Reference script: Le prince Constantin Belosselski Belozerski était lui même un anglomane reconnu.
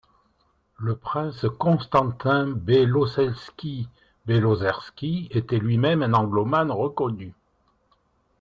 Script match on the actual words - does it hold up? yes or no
yes